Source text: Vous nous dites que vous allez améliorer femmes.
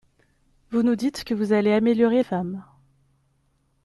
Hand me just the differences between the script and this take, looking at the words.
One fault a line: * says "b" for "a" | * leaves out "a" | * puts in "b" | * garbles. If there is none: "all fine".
all fine